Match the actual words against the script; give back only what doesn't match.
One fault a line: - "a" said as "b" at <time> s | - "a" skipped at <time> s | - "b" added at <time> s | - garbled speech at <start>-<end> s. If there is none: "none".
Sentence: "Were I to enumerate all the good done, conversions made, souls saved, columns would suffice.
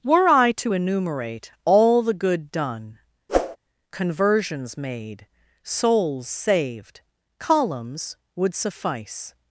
none